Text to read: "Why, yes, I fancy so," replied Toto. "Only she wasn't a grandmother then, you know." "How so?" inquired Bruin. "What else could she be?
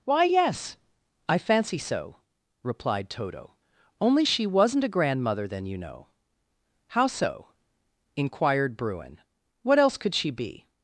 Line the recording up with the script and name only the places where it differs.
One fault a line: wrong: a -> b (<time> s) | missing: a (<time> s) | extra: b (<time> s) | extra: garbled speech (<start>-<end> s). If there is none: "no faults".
no faults